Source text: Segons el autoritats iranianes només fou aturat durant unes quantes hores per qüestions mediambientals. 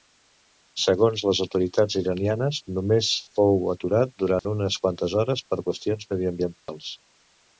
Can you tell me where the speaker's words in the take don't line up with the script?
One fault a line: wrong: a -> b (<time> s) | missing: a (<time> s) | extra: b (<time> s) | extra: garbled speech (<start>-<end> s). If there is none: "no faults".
wrong: el -> les (1.2 s)